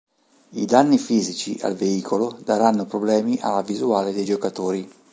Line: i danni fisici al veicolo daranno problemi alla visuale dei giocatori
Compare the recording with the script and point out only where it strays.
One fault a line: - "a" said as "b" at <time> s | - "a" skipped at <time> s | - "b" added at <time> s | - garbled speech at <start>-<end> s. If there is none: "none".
none